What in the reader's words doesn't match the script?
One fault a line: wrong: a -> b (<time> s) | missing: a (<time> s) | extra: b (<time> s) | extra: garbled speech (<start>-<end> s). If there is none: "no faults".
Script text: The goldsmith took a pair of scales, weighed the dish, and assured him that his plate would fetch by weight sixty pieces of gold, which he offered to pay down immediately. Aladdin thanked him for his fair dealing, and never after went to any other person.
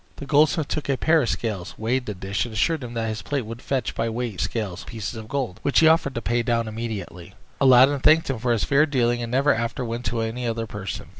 wrong: sixty -> scales (4.4 s)